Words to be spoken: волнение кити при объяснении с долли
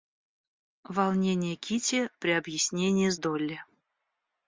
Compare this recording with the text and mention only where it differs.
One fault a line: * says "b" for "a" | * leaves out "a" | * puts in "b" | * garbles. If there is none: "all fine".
all fine